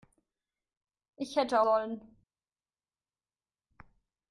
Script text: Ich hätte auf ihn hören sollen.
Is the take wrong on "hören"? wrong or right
wrong